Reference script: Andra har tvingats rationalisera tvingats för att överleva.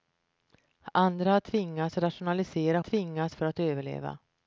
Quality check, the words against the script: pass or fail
pass